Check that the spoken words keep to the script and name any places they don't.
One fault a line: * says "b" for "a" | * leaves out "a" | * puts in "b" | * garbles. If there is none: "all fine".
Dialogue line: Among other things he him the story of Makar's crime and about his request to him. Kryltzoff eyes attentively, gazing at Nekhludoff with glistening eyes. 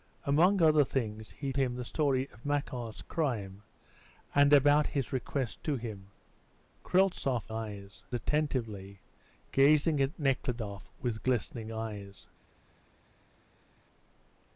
all fine